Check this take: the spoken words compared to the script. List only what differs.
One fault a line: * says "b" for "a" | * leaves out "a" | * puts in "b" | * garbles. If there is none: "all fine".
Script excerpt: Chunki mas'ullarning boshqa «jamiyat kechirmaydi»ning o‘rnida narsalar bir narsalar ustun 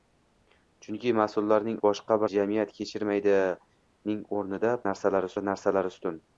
all fine